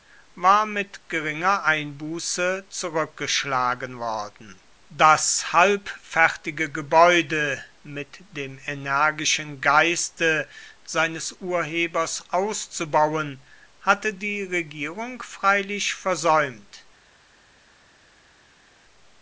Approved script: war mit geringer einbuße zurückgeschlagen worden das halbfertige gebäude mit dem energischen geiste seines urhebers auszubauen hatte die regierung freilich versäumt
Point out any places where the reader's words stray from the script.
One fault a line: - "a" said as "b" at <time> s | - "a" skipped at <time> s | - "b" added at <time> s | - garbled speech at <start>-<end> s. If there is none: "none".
none